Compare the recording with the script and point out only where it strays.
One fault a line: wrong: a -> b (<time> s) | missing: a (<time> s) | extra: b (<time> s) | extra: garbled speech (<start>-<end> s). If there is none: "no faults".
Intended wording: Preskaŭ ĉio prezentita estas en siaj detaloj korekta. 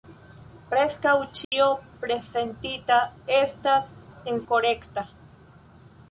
missing: siaj detaloj (4.4 s)